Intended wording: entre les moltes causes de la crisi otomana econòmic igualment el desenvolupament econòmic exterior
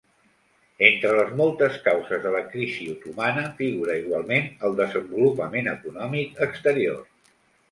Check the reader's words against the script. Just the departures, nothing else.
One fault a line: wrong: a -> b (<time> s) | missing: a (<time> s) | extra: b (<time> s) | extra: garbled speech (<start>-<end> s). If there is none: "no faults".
wrong: econòmic -> figura (3.6 s)